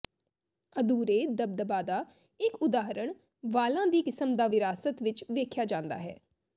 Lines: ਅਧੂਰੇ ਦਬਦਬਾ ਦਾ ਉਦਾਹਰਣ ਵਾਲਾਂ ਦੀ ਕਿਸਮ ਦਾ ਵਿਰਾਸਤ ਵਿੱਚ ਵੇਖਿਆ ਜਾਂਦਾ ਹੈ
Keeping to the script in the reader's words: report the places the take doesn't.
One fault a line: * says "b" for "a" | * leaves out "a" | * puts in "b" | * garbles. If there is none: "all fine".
* puts in "ਇੱਕ"